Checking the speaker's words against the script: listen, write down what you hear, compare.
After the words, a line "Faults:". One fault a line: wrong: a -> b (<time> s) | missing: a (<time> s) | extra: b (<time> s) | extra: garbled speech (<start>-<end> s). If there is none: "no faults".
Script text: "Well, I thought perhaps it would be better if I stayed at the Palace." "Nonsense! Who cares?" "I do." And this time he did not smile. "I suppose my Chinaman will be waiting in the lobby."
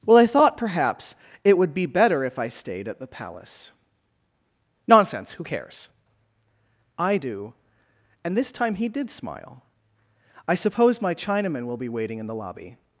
"Well, I thought perhaps it would be better if I stayed at the Palace." "Nonsense! Who cares?" "I do." And this time he did smile. "I suppose my Chinaman will be waiting in the lobby."
Faults:
missing: not (9.1 s)